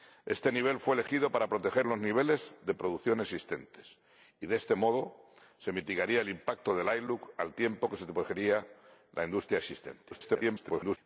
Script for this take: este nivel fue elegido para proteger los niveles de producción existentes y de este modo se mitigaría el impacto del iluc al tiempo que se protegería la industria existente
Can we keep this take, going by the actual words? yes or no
no